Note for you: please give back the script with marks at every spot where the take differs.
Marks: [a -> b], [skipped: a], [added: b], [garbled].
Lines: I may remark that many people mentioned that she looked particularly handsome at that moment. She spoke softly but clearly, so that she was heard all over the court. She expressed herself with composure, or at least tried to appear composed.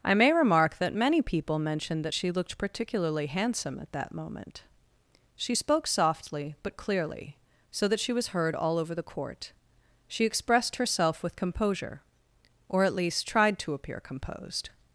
I may remark that many people mentioned that she looked particularly handsome at that moment. She spoke softly but clearly, so that she was heard all over the court. She expressed herself with composure, or at least tried to appear composed.